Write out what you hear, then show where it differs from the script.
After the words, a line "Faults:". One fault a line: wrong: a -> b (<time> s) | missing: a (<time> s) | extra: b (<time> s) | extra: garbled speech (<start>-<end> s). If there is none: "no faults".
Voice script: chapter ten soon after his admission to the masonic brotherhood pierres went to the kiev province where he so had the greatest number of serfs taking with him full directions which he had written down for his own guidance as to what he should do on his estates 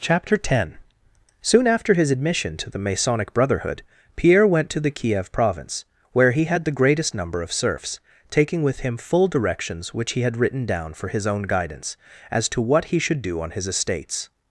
chapter ten soon after his admission to the masonic brotherhood pierre went to the kiev province where he had the greatest number of serfs taking with him full directions which he had written down for his own guidance as to what he should do on his estates
Faults:
wrong: pierres -> pierre (4.2 s)
missing: so (6.5 s)